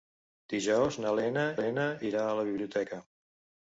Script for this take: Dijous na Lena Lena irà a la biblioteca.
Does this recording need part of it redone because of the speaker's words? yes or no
no